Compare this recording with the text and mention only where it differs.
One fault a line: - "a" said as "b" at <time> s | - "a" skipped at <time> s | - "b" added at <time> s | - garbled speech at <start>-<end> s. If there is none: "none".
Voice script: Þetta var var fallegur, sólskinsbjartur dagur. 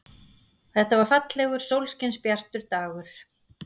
- "var" skipped at 1.1 s